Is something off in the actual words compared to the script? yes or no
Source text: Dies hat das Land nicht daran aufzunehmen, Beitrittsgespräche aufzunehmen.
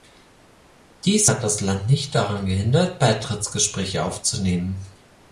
yes